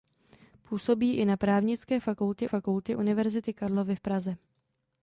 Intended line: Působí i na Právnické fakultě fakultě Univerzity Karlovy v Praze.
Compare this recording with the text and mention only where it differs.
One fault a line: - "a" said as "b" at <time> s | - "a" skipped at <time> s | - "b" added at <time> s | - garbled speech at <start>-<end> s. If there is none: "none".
none